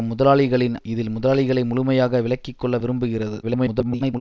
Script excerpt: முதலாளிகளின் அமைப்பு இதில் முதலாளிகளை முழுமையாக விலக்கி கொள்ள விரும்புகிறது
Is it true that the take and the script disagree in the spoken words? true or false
true